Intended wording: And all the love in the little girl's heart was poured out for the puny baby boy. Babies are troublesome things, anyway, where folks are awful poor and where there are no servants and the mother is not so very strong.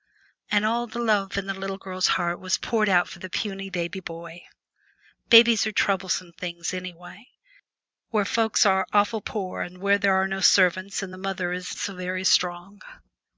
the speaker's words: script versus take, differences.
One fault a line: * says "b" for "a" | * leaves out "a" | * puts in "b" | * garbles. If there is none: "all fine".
* leaves out "not"